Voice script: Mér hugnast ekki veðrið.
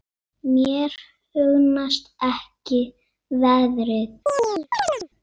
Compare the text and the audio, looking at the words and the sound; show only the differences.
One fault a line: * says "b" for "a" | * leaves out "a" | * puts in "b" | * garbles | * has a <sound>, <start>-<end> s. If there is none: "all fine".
* has a chirp, 4.3-5.1 s